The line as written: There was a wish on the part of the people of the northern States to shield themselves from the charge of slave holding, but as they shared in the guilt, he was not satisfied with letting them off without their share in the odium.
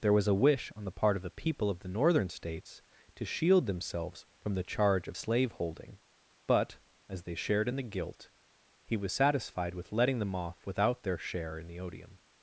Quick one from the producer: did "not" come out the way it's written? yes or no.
no